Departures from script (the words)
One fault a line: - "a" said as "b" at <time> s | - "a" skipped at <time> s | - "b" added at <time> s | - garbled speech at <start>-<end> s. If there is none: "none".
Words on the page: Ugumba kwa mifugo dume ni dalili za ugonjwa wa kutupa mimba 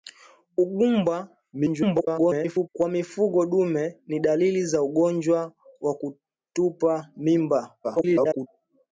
- garbled speech at 1.5-2.7 s
- garbled speech at 7.8-8.5 s